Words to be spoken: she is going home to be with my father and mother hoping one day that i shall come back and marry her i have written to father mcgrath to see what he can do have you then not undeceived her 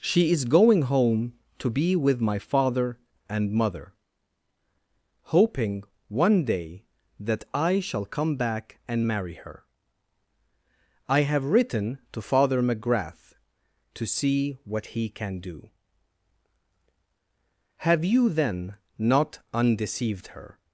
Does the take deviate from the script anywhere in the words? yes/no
no